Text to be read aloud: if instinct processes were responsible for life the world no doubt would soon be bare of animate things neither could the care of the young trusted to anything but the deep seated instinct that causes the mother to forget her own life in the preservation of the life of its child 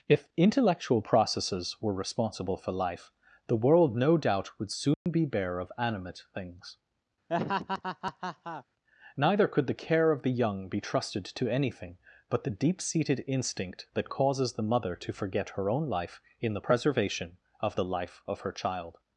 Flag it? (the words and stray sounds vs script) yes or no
yes